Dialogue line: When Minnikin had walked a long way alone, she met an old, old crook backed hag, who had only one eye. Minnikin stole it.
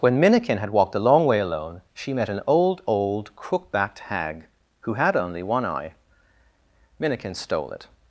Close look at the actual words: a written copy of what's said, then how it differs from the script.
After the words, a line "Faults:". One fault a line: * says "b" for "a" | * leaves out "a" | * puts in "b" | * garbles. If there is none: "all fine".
When Minnikin had walked a long way alone, she met an old, old crook backed hag, who had only one eye. Minnikin stole it.
Faults:
all fine